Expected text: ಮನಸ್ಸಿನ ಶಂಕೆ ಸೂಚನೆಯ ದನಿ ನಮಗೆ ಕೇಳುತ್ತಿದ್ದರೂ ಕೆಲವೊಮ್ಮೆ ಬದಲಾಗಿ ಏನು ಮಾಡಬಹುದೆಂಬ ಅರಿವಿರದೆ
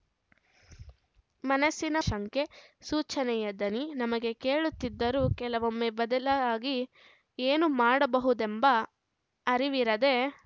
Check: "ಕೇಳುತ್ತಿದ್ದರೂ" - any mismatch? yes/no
no